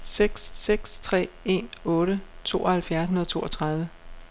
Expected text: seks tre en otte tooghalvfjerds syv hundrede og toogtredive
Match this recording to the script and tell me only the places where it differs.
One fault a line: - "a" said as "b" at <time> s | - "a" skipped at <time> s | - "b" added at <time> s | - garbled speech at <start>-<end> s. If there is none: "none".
- "seks" added at 0.5 s
- "syv" skipped at 3.1 s